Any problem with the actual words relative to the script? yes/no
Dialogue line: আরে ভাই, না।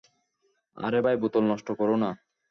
yes